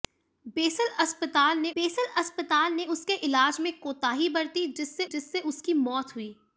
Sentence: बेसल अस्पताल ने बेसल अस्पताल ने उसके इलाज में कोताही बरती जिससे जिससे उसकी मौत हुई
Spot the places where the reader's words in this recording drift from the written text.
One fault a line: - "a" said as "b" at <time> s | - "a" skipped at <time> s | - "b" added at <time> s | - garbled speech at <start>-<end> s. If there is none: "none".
none